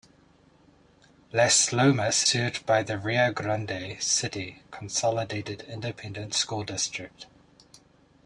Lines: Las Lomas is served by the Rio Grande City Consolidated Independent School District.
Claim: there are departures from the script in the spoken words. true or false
true